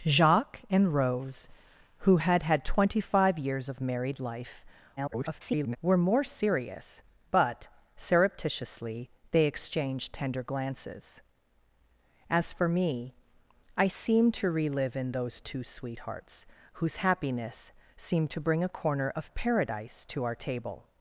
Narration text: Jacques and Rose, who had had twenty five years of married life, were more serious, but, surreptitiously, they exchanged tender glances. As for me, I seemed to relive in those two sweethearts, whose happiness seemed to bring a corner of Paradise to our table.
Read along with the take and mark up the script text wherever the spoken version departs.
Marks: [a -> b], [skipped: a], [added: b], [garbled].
Jacques and Rose, who had had twenty five years of married life, [garbled] were more serious, but, surreptitiously, they exchanged tender glances. As for me, I seemed to relive in those two sweethearts, whose happiness seemed to bring a corner of Paradise to our table.